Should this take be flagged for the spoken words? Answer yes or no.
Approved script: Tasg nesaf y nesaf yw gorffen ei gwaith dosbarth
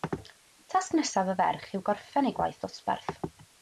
yes